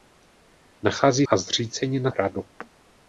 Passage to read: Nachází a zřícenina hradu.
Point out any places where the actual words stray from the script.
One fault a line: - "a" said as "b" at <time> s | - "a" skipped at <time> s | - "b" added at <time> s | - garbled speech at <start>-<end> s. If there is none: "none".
none